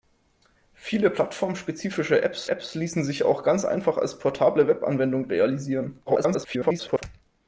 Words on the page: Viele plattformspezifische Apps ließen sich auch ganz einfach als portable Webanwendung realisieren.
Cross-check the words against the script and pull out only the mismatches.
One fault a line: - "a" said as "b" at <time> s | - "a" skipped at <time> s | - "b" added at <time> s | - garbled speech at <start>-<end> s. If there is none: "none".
- "Apps" added at 2.5 s
- garbled speech at 6.1-7.0 s